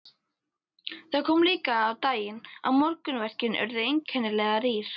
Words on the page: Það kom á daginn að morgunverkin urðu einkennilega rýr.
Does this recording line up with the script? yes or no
no